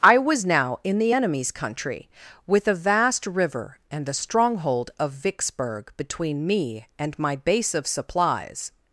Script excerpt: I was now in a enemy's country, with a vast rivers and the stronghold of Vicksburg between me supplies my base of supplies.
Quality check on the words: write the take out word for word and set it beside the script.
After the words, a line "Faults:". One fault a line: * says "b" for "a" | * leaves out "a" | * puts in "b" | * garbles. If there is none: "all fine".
I was now in the enemy's country, with a vast river and the stronghold of Vicksburg between me and my base of supplies.
Faults:
* says "the" for "a"
* says "river" for "rivers"
* says "and" for "supplies"